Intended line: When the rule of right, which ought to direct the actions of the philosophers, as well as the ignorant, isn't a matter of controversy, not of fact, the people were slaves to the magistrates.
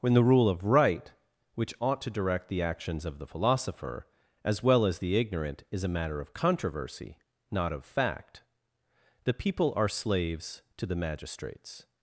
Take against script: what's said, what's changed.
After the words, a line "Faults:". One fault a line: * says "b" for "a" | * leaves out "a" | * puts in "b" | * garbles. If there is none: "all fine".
When the rule of right, which ought to direct the actions of the philosopher, as well as the ignorant, is a matter of controversy, not of fact, the people are slaves to the magistrates.
Faults:
* says "philosopher" for "philosophers"
* says "is" for "isn't"
* says "are" for "were"